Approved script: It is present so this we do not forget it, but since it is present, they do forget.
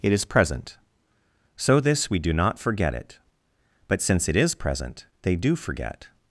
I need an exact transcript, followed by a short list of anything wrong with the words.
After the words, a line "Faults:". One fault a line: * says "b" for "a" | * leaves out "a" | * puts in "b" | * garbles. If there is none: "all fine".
It is present so this we do not forget it, but since it is present, they do forget.
Faults:
all fine